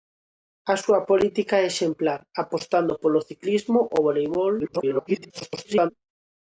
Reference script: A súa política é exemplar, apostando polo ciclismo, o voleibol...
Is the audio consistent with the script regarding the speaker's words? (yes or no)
no